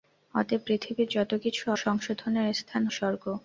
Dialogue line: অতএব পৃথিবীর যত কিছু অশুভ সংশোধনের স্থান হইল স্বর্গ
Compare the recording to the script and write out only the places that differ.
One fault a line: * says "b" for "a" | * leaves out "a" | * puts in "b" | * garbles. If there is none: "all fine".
* leaves out "অশুভ"
* leaves out "হইল"